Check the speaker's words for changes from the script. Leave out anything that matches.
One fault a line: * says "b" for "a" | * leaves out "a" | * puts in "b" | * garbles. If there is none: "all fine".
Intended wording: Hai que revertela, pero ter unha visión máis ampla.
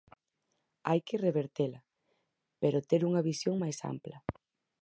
all fine